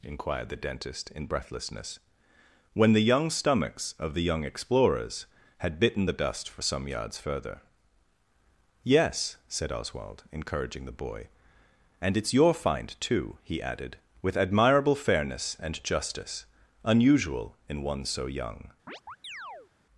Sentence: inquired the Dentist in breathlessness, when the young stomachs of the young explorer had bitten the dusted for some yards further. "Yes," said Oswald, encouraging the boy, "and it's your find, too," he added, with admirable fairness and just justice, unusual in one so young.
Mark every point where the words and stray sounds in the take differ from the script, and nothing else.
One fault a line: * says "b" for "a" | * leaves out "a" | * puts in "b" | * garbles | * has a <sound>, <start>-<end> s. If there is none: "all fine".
* says "explorers" for "explorer"
* says "dust" for "dusted"
* leaves out "just"
* has a chirp, 18.9-19.7 s